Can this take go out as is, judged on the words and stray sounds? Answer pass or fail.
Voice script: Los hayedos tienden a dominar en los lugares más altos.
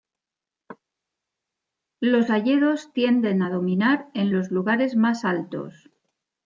pass